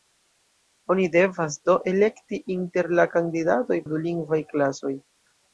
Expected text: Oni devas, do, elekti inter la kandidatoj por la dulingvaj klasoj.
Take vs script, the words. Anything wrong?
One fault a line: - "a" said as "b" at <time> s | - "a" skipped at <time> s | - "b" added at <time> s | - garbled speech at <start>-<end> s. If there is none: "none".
- "por" skipped at 3.8 s